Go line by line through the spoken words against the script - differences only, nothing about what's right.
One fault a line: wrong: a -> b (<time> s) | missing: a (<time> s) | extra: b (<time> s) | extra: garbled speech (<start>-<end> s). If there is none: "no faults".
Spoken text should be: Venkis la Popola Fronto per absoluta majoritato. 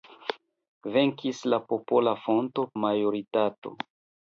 missing: per absoluta (2.7 s)